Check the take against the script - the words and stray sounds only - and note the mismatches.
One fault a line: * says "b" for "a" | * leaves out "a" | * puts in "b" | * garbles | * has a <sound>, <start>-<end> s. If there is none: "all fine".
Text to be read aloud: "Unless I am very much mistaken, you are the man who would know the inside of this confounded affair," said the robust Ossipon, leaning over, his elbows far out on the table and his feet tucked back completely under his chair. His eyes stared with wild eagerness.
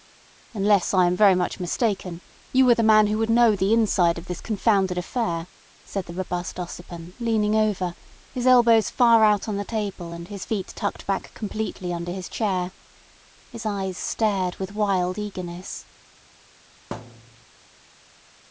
* has a thud, 16.9-17.5 s